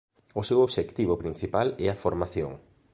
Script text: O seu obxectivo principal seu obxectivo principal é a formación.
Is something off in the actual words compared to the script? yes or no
yes